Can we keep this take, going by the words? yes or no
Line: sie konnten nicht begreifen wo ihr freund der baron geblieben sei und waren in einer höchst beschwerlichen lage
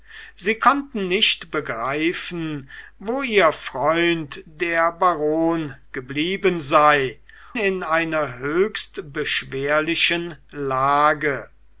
no